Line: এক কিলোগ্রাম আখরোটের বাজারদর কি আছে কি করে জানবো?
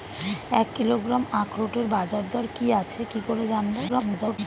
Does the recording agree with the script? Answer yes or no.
no